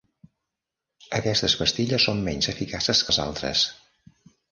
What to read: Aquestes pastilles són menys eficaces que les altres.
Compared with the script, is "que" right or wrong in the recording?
wrong